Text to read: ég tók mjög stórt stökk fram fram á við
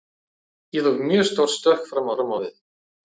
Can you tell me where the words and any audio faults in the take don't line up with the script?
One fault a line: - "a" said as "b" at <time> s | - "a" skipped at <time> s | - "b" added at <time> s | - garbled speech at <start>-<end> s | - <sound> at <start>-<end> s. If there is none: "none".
none